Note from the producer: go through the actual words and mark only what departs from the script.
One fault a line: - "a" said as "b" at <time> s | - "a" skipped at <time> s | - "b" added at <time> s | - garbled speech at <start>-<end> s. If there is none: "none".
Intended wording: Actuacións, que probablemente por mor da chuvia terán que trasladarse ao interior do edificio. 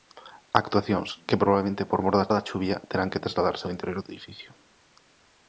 - "da" added at 2.3 s